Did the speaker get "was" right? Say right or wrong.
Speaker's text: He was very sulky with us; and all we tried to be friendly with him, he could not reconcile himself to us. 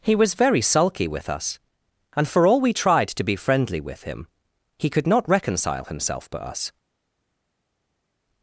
right